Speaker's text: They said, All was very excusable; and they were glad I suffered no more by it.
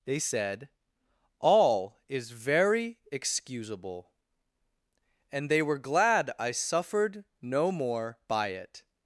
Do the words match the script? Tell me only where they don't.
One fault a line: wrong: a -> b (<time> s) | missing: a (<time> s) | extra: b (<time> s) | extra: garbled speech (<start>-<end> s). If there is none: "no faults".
wrong: was -> is (2.1 s)